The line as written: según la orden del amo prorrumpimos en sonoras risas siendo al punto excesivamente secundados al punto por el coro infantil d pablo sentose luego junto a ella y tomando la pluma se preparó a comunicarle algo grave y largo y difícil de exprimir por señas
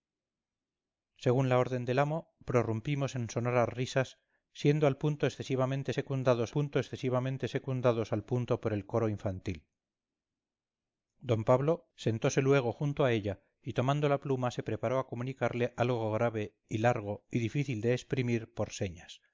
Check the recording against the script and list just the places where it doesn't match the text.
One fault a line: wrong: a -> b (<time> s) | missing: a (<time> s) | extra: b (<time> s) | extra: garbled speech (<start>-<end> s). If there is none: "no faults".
extra: punto excesivamente secundados (6.5 s)